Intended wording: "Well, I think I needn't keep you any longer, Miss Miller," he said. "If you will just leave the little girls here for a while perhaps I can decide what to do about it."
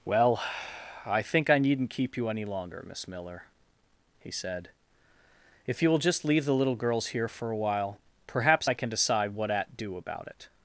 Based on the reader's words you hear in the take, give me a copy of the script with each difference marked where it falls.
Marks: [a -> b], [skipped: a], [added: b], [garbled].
"Well, I think I needn't keep you any longer, Miss Miller," he said. "If you will just leave the little girls here for a while perhaps I can decide what [to -> at] do about it."